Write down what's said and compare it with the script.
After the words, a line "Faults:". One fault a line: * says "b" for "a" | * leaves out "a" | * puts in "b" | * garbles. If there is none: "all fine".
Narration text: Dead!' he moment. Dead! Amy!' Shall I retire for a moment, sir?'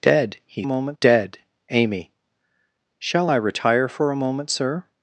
Dead!' he moment. Dead! Amy!' Shall I retire for a moment, sir?'
Faults:
all fine